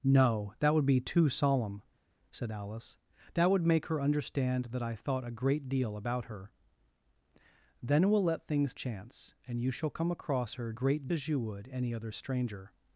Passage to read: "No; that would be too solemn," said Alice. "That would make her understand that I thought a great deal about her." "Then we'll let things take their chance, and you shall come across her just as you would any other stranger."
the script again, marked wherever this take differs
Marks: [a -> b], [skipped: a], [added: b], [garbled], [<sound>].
"No; that would be too solemn," said Alice. "That would make her understand that I thought a great deal about her." "Then we'll let things [skipped: take their] chance, and you shall come across her [just -> great] as you would any other stranger."